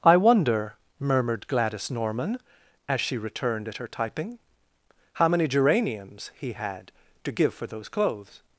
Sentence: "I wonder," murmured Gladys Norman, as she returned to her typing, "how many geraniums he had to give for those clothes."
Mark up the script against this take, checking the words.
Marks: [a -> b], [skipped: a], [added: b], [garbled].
"I wonder," murmured Gladys Norman, as she returned [to -> at] her typing, "how many geraniums he had to give for those clothes."